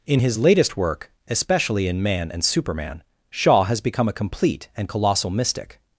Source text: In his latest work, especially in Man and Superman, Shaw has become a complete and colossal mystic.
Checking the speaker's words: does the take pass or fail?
pass